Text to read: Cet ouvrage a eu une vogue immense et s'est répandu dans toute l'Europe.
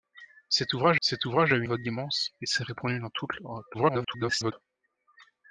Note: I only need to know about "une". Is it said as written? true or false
false